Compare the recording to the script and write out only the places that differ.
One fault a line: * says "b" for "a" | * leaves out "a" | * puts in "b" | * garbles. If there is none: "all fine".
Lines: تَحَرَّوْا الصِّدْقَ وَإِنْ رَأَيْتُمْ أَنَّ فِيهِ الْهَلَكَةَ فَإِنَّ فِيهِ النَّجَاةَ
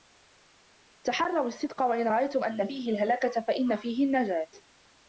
all fine